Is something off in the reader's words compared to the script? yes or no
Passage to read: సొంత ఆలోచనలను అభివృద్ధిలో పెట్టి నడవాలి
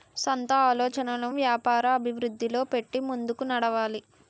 yes